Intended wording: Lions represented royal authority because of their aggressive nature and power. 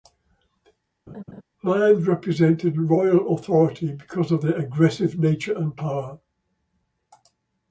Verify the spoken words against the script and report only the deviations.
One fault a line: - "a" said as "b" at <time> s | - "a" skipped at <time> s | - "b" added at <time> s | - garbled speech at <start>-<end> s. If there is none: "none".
none